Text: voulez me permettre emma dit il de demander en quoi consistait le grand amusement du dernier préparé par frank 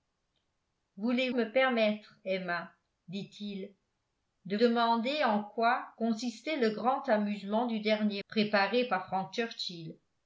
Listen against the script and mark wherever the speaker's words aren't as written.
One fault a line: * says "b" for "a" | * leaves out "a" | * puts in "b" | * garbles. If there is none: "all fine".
all fine